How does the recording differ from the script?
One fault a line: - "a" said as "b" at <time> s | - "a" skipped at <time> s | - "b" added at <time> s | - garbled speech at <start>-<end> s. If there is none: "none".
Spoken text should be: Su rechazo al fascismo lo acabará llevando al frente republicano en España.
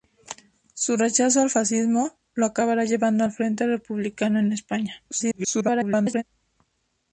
- garbled speech at 5.1-6.2 s